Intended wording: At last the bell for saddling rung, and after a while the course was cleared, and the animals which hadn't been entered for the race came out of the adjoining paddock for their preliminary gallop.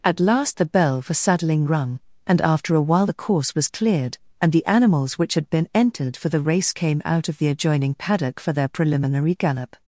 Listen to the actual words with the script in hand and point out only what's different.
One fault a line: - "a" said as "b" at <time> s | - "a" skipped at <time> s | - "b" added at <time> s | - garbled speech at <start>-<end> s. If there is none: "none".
- "hadn't" said as "had" at 5.3 s